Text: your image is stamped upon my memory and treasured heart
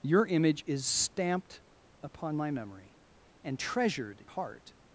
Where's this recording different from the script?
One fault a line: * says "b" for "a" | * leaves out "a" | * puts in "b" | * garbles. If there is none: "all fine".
all fine